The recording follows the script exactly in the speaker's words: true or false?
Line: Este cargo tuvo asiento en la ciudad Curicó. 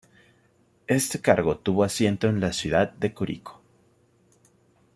false